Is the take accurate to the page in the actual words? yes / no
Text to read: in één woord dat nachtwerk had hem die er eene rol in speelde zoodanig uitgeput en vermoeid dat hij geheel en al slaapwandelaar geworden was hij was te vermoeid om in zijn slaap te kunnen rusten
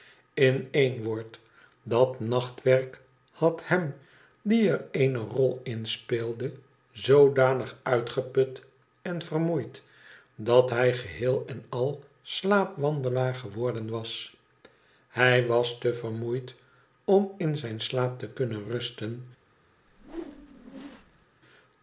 yes